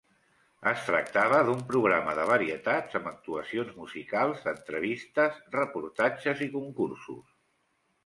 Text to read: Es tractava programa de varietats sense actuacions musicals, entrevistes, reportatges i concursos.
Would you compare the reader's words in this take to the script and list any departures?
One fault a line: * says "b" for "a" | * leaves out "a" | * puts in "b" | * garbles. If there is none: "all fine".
* puts in "d'un"
* says "amb" for "sense"